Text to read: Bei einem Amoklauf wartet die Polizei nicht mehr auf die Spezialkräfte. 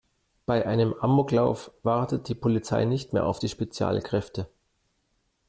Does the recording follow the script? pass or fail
pass